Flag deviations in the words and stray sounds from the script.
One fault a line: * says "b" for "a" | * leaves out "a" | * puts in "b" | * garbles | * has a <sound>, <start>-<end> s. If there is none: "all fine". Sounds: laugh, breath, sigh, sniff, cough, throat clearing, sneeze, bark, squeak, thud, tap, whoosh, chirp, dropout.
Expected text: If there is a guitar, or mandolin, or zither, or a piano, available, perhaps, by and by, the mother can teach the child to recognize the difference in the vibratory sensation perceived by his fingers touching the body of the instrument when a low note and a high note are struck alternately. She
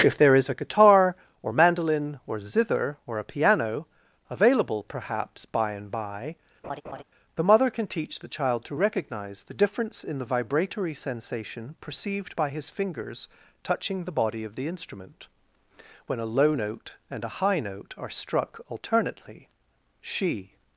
* has a laugh, 6.6-7.0 s